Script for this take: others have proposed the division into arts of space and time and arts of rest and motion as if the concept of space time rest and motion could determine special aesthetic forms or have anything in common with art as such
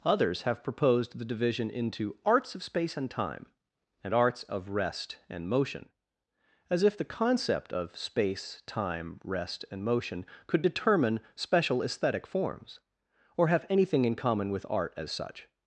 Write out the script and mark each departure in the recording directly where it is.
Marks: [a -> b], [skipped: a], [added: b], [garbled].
others have proposed the division into arts of space and time and arts of rest and motion as if the concept of space time rest and motion could determine special aesthetic forms or have anything in common with art as such